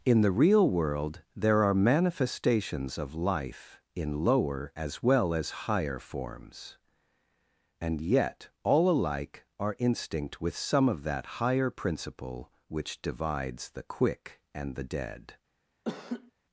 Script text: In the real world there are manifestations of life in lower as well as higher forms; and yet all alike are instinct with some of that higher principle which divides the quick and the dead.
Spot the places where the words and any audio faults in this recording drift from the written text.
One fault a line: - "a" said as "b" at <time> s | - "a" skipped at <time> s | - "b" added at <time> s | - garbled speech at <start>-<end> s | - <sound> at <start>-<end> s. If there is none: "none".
- laugh at 15.9-16.3 s